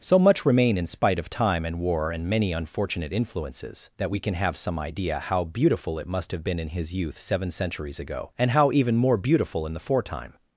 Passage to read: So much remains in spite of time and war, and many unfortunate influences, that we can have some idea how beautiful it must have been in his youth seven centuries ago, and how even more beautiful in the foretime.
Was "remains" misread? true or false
true